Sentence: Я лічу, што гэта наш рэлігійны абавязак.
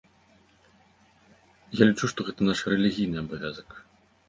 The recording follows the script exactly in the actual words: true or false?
true